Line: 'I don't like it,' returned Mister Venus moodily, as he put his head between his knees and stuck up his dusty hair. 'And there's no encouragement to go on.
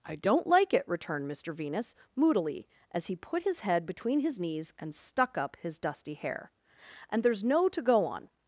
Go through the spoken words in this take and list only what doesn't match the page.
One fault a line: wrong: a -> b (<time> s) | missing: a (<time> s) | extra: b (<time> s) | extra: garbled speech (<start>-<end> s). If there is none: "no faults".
missing: encouragement (7.7 s)